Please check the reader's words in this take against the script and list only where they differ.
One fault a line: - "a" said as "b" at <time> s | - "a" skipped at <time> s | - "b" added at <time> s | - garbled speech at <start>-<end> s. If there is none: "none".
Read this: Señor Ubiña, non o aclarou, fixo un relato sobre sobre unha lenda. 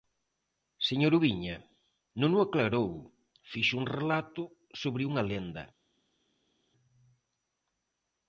- "sobre" skipped at 5.0 s